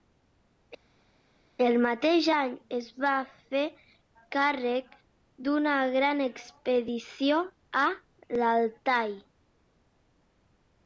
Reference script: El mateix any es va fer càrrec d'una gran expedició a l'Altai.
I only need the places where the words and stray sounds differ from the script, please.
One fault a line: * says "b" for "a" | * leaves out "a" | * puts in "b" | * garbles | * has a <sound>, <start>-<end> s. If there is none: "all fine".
all fine